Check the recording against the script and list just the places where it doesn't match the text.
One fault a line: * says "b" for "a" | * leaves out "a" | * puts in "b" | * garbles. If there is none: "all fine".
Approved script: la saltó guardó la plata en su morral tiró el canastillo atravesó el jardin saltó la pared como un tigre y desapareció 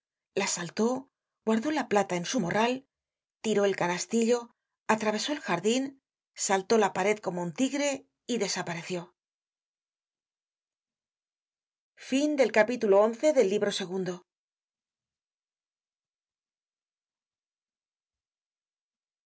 all fine